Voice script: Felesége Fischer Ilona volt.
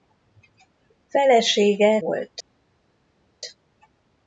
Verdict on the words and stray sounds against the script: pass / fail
fail